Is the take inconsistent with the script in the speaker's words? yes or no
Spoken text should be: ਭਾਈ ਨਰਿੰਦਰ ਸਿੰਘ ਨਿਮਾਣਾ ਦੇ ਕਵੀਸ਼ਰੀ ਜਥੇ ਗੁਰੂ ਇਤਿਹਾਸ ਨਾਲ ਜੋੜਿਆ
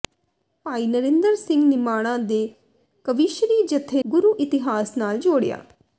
no